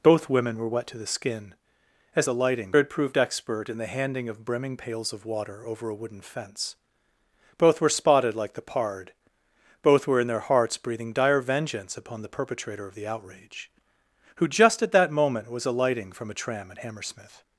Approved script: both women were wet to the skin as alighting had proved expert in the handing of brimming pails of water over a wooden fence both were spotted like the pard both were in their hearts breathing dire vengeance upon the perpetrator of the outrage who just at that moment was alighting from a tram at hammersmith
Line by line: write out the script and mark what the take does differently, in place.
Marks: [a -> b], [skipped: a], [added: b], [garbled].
both women were wet to the skin as alighting had proved expert in the handing of brimming pails of water over a wooden fence both were spotted like the pard both were in their hearts breathing dire vengeance upon the perpetrator of the outrage who just at that moment was alighting from a tram at hammersmith